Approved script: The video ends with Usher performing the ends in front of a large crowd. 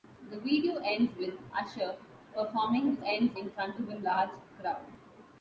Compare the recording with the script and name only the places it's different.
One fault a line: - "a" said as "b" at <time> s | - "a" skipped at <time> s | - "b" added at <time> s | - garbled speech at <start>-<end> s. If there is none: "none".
none